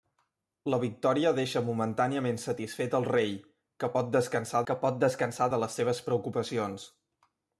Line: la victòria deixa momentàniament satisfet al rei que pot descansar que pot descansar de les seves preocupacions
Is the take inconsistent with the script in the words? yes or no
no